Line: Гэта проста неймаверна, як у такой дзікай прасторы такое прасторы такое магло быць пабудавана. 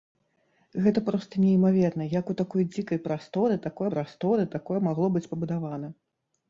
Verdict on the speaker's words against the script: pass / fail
pass